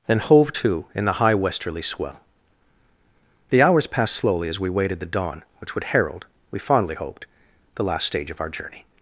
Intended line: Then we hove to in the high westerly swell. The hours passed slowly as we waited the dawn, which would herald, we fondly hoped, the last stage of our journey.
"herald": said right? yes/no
yes